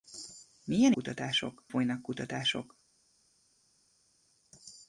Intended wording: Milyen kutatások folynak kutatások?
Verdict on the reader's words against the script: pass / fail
pass